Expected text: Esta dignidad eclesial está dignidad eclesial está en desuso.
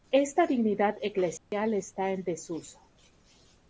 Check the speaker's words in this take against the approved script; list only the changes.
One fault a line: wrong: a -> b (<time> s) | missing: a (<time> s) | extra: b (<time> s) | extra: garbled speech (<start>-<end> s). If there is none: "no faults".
missing: dignidad eclesial está (2.1 s)